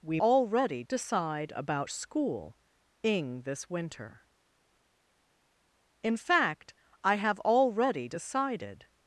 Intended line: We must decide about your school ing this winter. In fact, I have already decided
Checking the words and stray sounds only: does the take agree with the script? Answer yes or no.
no